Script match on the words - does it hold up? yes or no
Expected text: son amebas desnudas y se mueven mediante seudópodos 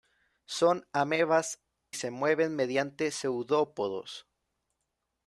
no